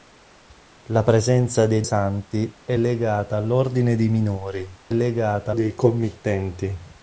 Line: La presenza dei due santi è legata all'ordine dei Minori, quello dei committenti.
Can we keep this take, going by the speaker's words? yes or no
no